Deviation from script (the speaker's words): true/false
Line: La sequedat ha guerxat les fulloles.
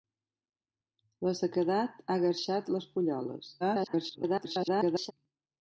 true